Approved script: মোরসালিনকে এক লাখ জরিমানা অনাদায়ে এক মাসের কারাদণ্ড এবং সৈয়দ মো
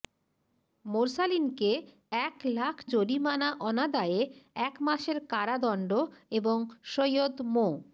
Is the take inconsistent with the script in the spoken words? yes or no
no